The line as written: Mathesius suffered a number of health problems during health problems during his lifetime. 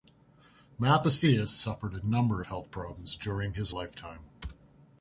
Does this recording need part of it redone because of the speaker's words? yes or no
yes